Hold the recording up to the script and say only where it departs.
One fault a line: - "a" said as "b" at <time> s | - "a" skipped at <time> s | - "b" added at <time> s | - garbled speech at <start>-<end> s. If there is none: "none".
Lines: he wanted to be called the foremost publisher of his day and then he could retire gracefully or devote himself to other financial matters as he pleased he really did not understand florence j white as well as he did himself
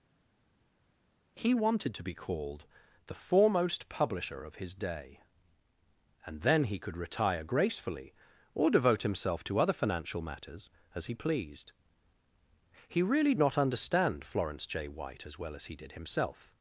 - "did" skipped at 13.3 s